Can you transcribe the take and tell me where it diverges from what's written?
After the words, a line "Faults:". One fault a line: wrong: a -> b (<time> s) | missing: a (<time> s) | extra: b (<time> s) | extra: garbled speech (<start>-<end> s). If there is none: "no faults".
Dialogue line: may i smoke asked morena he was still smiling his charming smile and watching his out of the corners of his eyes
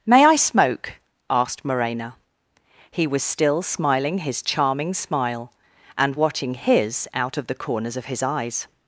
may i smoke asked morena he was still smiling his charming smile and watching his out of the corners of his eyes
Faults:
no faults